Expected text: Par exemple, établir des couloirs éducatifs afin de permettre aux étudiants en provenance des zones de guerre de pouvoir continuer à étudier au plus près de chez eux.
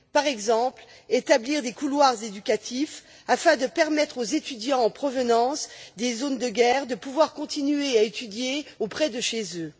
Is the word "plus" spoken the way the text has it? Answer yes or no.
no